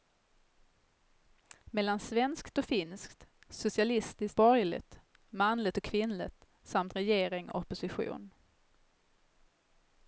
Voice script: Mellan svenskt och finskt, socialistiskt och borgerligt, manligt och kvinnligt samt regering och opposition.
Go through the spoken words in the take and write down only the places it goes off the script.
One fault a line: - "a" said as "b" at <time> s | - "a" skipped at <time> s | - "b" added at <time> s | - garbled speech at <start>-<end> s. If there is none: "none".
- "och" skipped at 4.4 s